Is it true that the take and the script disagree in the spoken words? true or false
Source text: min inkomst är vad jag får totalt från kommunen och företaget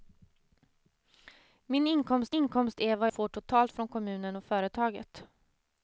true